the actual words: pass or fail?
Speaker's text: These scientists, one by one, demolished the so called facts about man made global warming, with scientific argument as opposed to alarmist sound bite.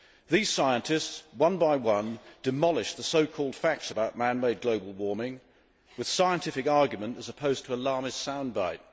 pass